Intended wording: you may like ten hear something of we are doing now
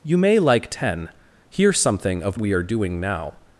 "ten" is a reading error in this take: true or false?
false